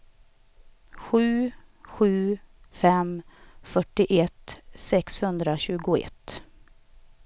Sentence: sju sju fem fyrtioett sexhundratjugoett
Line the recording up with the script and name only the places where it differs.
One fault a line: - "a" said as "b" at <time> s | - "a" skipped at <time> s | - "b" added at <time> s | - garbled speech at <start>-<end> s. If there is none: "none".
none